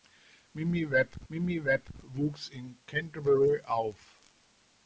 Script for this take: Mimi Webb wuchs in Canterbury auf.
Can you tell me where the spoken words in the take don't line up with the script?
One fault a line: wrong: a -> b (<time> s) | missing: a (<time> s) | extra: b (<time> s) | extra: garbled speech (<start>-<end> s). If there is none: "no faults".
extra: mimi Webb (1.3 s)